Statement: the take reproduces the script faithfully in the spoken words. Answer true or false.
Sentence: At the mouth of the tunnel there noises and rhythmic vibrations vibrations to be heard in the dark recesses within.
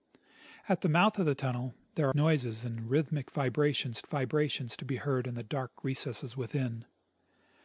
true